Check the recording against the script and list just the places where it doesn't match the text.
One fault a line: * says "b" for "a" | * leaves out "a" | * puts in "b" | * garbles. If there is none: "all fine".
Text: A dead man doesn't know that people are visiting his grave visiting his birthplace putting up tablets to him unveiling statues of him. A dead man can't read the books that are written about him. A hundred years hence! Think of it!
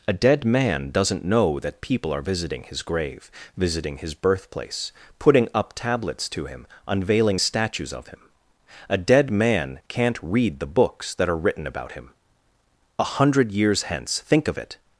all fine